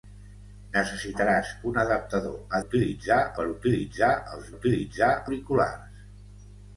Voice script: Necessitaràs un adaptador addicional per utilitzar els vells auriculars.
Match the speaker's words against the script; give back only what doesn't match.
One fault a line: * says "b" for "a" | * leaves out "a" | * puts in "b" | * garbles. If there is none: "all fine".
* says "utilitzar" for "addicional"
* says "utilitzar" for "vells"